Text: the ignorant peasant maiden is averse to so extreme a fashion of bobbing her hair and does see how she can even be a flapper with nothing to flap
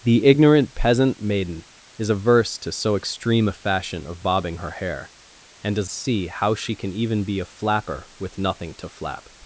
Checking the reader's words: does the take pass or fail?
pass